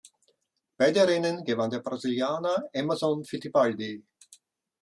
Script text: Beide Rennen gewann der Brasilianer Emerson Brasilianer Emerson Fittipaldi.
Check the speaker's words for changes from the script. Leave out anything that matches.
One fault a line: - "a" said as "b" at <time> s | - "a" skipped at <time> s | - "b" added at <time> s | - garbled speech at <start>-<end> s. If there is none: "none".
- "Brasilianer Emerson" skipped at 3.2 s